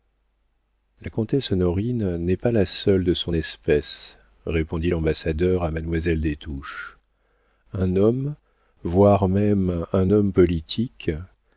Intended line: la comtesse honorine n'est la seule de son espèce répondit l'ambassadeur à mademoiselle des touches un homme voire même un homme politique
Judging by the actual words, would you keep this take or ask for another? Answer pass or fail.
fail